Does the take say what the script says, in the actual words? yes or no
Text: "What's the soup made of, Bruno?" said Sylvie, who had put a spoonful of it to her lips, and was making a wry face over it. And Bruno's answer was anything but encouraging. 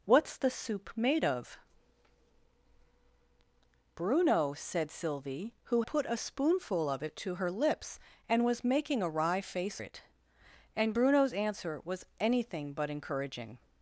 no